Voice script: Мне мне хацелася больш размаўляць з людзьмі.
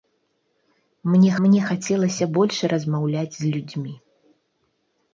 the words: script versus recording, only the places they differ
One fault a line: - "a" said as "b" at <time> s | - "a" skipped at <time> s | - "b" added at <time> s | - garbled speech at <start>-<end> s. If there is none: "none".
none